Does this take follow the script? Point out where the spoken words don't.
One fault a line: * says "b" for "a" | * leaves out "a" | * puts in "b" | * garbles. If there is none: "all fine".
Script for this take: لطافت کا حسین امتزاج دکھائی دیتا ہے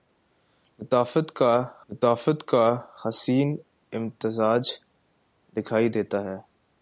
* puts in "لطافت کا"